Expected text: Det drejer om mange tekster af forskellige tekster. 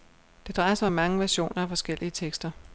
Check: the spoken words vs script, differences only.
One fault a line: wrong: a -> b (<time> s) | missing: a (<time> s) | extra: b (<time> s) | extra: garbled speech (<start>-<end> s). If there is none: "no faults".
extra: sig (0.8 s)
wrong: tekster -> versioner (1.2 s)